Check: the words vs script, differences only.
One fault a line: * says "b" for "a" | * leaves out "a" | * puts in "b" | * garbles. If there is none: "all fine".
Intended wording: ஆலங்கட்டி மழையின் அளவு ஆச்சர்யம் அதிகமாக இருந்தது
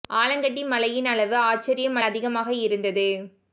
all fine